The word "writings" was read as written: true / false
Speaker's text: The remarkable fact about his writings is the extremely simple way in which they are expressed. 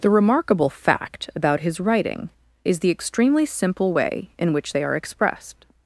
false